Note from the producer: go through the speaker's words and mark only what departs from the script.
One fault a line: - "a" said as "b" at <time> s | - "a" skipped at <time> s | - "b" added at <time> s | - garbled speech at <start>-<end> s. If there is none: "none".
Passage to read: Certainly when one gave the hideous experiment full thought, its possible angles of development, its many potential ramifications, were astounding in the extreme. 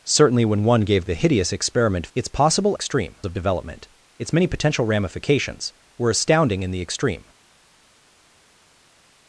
- "full thought" skipped at 2.1 s
- "angles" said as "extreme" at 2.7 s